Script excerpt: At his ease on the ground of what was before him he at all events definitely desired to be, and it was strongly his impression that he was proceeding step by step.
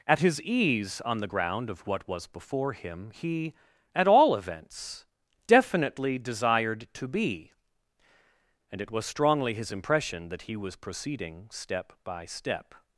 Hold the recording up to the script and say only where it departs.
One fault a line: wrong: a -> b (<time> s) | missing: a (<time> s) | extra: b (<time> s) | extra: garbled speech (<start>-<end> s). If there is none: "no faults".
no faults